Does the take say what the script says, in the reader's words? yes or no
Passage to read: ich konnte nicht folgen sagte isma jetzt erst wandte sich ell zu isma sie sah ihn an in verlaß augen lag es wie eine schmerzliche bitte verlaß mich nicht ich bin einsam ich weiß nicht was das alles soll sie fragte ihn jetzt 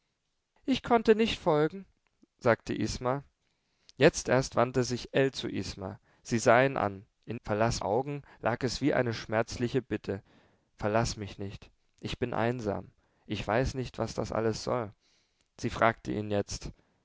yes